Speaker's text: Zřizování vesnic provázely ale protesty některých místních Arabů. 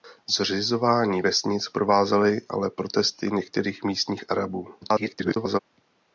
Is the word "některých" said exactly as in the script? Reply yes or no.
yes